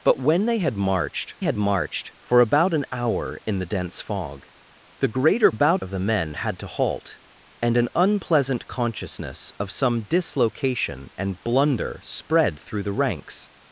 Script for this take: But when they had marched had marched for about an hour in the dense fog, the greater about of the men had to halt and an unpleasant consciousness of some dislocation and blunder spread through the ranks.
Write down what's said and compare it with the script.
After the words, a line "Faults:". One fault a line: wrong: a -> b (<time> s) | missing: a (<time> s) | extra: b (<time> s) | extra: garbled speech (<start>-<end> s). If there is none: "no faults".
But when they had marched had marched for about an hour in the dense fog, the greater about of the men had to halt and an unpleasant consciousness of some dislocation and blunder spread through the ranks.
Faults:
no faults